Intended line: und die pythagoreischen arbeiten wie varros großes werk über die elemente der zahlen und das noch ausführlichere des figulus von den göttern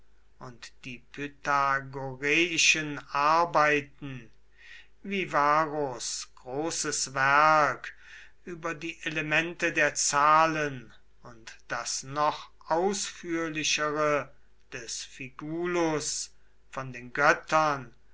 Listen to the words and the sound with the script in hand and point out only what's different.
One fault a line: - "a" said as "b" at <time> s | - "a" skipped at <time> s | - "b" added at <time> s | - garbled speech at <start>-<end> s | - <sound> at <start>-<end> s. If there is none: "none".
none